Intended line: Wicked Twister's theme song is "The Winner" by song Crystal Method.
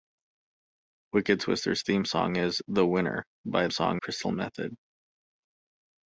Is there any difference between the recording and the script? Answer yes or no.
no